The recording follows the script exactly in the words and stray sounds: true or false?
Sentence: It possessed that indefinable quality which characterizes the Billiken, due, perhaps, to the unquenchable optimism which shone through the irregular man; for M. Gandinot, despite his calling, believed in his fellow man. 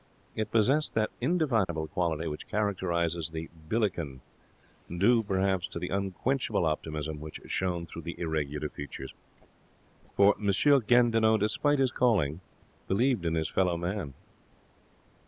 false